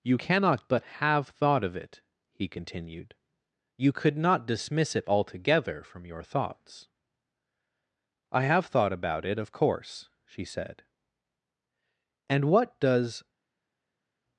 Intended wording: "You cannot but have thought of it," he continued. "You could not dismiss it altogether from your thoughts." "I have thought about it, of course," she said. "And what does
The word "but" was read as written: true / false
true